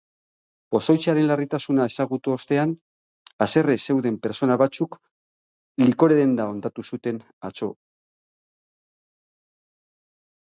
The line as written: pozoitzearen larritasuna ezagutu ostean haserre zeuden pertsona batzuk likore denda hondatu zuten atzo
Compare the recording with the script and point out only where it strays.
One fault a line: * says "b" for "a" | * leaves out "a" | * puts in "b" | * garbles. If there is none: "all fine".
all fine